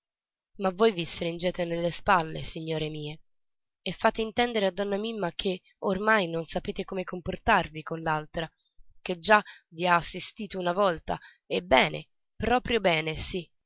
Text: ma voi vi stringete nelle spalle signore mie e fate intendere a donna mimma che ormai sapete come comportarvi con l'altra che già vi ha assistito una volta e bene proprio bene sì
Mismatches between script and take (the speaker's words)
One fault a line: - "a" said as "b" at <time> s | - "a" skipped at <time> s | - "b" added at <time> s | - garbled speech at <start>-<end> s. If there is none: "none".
- "non" added at 6.3 s